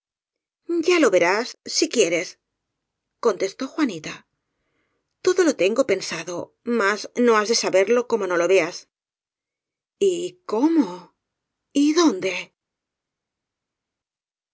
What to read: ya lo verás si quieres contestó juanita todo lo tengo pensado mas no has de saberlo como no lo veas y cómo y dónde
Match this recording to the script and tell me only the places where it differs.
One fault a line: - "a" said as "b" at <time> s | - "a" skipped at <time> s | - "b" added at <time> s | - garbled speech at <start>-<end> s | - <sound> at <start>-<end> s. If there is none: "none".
none